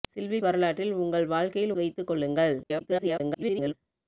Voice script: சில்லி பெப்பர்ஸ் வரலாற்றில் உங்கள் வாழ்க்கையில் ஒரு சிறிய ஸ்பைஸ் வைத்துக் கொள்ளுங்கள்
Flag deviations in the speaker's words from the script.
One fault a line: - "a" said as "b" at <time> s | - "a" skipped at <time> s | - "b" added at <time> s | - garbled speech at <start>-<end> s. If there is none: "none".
- "பெப்பர்ஸ்" skipped at 0.4 s
- "ஒரு சிறிய ஸ்பைஸ்" skipped at 1.8 s
- garbled speech at 2.6-3.7 s